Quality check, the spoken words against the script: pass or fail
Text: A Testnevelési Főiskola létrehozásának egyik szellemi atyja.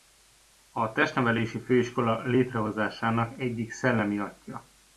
pass